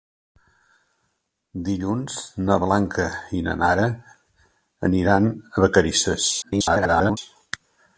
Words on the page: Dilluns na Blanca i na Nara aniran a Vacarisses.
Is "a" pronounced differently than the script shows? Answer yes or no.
no